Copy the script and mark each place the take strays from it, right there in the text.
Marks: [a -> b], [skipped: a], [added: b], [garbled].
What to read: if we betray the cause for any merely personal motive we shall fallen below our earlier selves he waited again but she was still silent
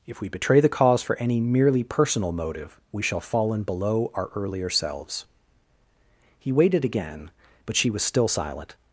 if we betray the cause for any merely personal motive we shall fallen below our earlier selves he waited again but she was still silent